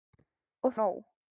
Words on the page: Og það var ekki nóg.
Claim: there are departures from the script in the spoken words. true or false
true